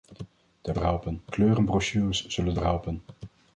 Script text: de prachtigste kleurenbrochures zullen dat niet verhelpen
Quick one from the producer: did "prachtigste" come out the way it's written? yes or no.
no